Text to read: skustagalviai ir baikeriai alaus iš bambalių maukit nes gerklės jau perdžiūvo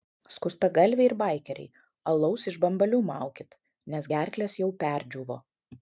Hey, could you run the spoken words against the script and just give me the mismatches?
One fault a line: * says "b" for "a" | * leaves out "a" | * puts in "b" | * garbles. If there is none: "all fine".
all fine